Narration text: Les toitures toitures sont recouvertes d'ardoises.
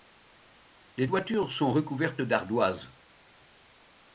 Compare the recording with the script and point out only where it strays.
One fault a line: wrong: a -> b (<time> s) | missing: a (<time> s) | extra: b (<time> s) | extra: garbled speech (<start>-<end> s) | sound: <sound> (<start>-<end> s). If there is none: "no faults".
missing: toitures (1.5 s)